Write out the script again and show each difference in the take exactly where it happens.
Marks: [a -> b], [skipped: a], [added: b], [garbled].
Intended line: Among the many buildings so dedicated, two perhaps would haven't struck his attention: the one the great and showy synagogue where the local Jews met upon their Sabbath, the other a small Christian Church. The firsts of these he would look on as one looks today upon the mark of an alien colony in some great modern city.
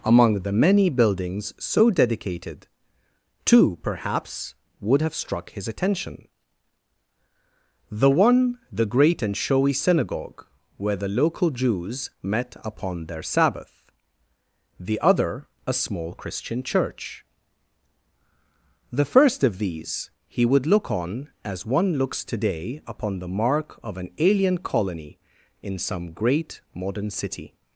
Among the many buildings so dedicated, two perhaps would [haven't -> have] struck his attention: the one the great and showy synagogue where the local Jews met upon their Sabbath, the other a small Christian Church. The [firsts -> first] of these he would look on as one looks today upon the mark of an alien colony in some great modern city.